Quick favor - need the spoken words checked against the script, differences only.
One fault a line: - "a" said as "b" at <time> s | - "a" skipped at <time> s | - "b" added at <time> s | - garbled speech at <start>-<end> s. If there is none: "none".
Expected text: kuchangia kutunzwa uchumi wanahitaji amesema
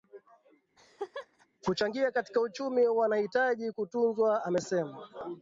- "kutunzwa" said as "katika" at 2.1 s
- "kutunzwa" added at 3.7 s